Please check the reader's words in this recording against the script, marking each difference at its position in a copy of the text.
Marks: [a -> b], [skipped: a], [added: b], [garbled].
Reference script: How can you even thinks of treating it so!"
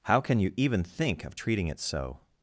How can you even [thinks -> think] of treating it so!"